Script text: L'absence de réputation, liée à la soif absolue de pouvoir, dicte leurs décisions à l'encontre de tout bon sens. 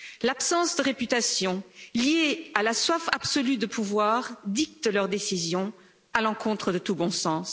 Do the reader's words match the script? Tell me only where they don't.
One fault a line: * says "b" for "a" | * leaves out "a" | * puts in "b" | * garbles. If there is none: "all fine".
all fine